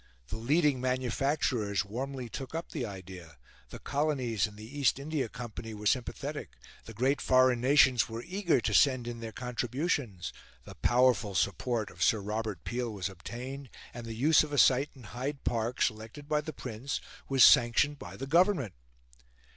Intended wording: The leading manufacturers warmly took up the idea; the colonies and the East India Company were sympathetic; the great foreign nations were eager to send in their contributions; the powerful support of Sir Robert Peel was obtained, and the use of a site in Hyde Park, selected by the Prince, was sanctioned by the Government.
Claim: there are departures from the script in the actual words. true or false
false